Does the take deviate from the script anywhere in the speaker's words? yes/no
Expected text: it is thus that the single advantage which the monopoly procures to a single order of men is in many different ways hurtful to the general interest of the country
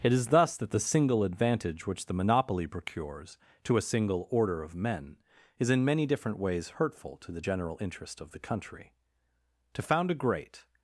yes